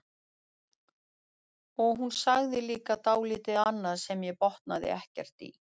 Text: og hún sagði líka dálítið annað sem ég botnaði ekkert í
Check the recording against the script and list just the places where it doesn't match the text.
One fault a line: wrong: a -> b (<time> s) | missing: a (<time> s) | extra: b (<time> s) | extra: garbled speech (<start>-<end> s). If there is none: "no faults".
no faults